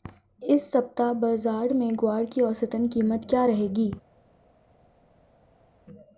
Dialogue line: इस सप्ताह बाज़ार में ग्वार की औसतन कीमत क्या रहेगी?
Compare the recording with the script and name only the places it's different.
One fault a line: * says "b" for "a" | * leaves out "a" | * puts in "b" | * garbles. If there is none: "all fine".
all fine